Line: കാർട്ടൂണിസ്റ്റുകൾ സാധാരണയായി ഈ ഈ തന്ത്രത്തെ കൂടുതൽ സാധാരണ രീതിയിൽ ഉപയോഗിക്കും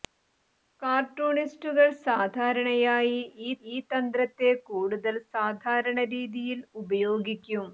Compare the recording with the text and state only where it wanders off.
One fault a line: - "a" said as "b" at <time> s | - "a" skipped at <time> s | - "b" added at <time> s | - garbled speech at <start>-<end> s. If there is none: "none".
none